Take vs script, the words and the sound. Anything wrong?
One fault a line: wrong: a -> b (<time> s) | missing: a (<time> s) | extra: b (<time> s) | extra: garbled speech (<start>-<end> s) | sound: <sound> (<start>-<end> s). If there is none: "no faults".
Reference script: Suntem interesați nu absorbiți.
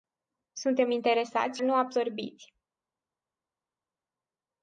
no faults